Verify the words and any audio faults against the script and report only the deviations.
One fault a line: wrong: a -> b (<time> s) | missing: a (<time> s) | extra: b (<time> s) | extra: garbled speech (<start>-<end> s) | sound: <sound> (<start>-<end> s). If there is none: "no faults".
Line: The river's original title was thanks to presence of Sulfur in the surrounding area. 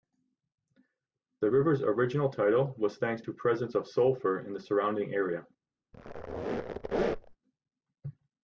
sound: squeak (5.9-7.4 s)